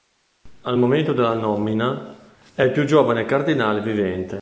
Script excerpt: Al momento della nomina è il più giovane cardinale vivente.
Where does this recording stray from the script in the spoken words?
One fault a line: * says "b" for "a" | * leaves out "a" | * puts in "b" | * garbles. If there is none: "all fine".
all fine